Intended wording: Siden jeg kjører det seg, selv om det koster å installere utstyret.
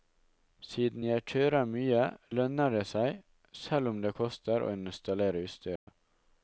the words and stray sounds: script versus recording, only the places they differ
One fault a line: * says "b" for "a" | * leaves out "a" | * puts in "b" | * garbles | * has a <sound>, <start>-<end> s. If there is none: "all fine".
* puts in "mye lønner"
* has a dropout, 5.8-5.9 s